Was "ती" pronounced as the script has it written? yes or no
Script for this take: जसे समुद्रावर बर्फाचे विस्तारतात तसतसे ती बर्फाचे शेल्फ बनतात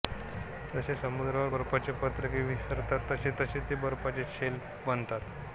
no